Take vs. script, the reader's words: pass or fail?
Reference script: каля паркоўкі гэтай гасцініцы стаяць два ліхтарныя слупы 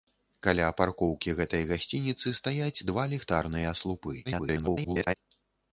fail